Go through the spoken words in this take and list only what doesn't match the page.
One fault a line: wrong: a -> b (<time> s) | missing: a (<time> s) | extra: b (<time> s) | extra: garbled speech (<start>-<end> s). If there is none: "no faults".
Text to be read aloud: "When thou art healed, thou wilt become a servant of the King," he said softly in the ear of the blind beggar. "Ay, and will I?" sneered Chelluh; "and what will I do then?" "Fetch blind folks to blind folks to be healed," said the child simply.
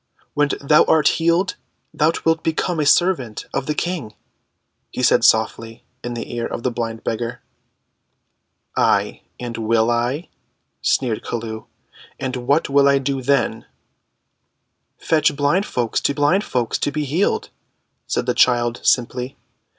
no faults